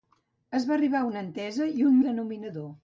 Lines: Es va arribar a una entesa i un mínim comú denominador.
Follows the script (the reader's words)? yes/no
no